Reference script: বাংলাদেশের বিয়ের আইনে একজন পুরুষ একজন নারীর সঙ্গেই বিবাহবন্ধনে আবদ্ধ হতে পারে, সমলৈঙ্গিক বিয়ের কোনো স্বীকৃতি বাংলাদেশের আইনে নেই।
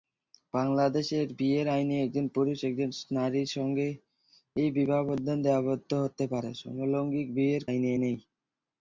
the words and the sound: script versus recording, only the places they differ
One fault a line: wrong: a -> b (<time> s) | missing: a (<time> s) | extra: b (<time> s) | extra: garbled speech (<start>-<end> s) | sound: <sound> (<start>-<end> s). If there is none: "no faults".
missing: কোনো স্বীকৃতি বাংলাদেশের (7.6 s)